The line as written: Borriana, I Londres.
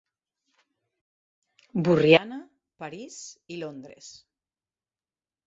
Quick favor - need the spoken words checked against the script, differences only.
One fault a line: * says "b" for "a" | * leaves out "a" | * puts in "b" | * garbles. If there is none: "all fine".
* puts in "París"